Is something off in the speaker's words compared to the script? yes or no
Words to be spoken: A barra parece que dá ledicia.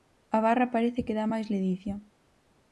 yes